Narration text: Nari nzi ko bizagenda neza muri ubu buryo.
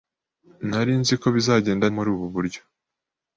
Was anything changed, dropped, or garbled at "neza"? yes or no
yes